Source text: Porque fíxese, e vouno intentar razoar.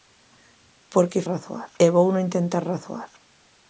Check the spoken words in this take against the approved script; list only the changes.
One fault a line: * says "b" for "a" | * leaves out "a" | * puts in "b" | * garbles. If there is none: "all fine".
* says "razoar" for "fíxese"